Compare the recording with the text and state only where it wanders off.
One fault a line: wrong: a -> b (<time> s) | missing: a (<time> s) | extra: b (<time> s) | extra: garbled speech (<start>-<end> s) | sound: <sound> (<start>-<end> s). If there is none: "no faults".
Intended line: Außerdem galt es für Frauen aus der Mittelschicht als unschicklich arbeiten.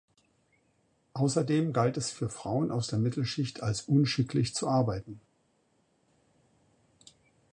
extra: zu (4.5 s)